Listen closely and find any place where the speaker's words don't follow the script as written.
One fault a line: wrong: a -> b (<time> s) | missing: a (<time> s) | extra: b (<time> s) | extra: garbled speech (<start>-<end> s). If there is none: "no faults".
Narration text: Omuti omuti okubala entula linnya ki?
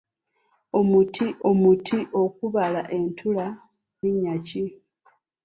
no faults